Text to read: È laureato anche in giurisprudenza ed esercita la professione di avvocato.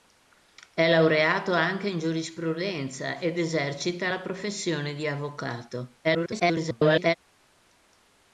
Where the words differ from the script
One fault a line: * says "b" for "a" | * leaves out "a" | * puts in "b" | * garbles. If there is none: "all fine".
* garbles